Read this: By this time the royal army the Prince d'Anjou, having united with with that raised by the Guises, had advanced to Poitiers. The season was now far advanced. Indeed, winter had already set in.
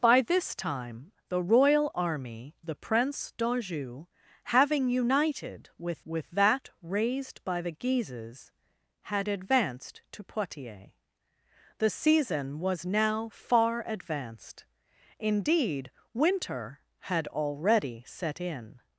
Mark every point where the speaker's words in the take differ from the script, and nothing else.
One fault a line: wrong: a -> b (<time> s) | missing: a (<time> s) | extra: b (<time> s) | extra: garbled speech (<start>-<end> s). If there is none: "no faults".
no faults